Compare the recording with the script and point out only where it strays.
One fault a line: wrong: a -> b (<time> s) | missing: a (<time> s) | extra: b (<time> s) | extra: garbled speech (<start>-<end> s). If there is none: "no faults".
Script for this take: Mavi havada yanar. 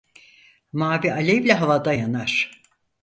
extra: alevle (1.1 s)